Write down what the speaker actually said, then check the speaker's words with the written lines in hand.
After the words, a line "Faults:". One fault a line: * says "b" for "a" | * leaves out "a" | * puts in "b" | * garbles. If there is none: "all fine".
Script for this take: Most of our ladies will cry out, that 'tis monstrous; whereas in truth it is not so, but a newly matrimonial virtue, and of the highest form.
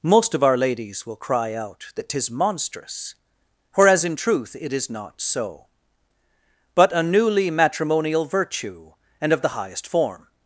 Most of our ladies will cry out, that 'tis monstrous; whereas in truth it is not so, but a newly matrimonial virtue, and of the highest form.
Faults:
all fine